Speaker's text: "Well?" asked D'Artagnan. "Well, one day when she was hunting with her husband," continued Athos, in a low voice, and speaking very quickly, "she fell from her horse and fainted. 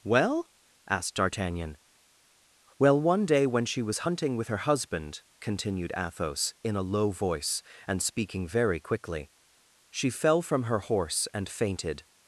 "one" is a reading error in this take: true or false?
false